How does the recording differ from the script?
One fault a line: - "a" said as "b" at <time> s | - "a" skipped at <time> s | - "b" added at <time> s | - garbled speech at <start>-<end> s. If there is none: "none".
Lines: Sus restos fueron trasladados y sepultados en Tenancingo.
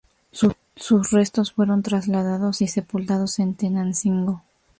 none